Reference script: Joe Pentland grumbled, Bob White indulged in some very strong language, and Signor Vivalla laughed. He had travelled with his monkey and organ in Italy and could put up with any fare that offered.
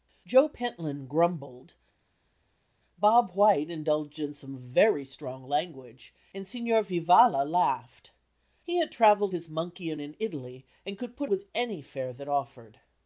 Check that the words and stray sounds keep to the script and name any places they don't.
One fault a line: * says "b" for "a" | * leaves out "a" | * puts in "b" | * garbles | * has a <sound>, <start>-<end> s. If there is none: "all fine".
* leaves out "with"
* leaves out "organ"
* leaves out "up"